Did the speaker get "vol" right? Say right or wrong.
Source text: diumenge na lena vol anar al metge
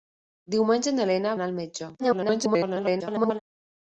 wrong